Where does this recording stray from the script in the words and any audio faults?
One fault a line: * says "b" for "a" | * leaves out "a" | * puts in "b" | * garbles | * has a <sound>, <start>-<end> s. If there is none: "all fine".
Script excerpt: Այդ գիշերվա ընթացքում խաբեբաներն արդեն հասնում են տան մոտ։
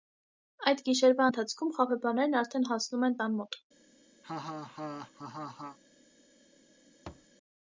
* has a laugh, 4.2-5.8 s
* has a thud, 7.1-7.3 s